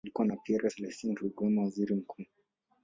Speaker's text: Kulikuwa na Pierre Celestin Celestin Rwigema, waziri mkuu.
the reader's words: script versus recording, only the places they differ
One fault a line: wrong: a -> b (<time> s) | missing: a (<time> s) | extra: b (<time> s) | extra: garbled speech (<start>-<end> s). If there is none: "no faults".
missing: Celestin (1.1 s)